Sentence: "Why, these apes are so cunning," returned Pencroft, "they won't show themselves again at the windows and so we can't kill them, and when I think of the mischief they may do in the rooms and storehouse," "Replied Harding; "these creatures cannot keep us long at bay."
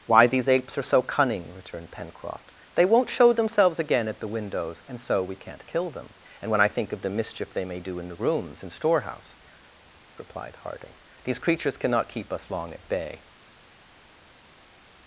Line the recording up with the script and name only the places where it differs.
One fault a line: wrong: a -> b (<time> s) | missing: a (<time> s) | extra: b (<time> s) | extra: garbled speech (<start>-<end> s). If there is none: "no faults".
no faults